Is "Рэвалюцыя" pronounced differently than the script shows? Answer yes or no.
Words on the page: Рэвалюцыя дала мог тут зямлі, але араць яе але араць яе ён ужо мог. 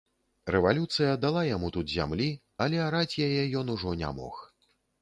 no